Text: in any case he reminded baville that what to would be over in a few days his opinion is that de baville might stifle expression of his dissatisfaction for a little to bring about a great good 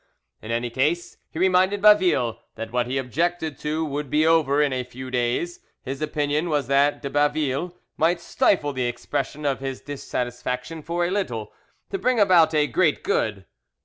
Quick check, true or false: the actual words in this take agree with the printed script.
false